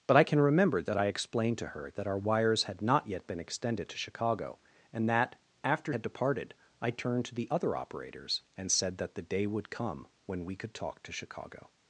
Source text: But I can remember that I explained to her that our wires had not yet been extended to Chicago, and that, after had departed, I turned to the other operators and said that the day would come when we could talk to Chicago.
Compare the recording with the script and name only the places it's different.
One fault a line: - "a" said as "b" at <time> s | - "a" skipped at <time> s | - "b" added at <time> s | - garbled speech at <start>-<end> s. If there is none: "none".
none